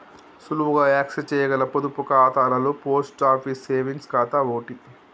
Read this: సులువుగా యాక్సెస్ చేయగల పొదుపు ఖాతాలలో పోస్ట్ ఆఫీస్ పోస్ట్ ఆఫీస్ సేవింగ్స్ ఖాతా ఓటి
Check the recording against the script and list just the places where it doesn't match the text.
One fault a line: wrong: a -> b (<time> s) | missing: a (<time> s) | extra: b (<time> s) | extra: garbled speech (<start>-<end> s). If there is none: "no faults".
missing: పోస్ట్ ఆఫీస్ (3.7 s)